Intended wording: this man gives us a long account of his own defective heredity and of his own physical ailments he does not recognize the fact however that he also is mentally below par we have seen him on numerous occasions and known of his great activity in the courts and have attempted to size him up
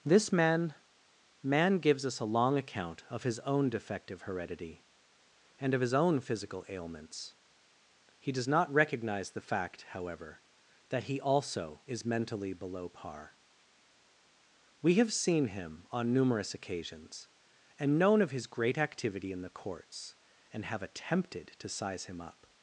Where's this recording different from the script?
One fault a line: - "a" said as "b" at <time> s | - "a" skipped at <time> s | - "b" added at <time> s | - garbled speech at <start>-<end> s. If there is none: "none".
- "man" added at 1.4 s